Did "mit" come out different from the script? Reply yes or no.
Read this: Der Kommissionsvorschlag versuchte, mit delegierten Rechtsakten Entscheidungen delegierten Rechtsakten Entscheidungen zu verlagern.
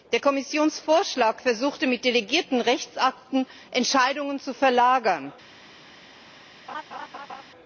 no